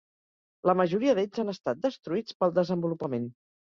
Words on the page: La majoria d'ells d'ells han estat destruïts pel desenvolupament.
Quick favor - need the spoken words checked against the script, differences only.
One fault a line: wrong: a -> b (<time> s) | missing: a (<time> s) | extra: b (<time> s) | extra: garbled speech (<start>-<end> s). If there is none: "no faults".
missing: d'ells (1.4 s)